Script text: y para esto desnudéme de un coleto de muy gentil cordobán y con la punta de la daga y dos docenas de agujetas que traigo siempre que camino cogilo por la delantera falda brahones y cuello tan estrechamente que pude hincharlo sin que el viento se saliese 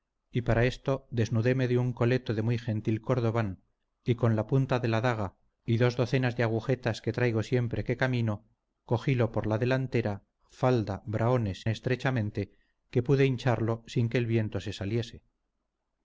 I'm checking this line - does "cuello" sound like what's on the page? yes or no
no